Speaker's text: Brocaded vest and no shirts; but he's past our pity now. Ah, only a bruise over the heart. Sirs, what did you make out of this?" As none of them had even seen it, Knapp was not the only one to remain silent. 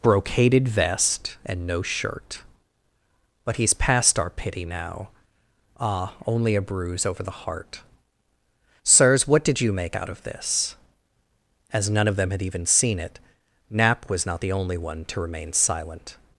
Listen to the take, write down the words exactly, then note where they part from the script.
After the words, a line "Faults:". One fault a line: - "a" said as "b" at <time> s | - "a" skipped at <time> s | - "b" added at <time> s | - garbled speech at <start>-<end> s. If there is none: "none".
Brocaded vest and no shirt; but he's past our pity now. Ah, only a bruise over the heart. Sirs, what did you make out of this?" As none of them had even seen it, Knapp was not the only one to remain silent.
Faults:
- "shirts" said as "shirt" at 1.8 s